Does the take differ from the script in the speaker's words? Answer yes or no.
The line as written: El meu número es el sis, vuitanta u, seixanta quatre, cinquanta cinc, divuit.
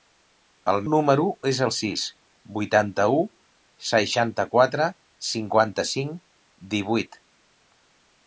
yes